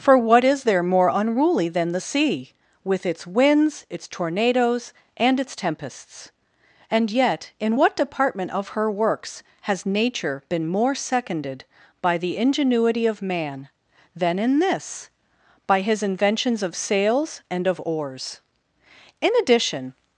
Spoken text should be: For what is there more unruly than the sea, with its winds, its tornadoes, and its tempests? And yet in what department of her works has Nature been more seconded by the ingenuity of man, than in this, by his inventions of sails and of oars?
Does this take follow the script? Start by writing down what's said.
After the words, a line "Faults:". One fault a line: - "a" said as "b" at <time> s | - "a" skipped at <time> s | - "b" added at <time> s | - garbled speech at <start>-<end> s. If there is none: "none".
For what is there more unruly than the sea, with its winds, its tornadoes, and its tempests? And yet in what department of her works has Nature been more seconded by the ingenuity of man, than in this, by his inventions of sails and of oars? In addition
Faults:
- "In addition" added at 19.2 s